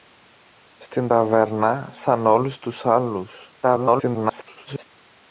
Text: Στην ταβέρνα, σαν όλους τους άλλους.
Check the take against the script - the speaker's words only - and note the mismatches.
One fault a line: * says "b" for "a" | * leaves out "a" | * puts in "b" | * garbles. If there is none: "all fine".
* garbles